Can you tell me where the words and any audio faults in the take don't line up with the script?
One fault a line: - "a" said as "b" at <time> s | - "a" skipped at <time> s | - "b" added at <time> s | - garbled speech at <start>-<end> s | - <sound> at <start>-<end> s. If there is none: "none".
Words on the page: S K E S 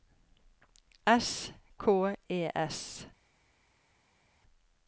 none